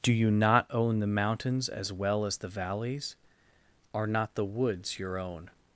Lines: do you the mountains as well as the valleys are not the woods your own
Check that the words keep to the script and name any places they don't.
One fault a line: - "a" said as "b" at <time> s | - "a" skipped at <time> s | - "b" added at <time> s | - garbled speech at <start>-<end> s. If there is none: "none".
- "not own" added at 0.3 s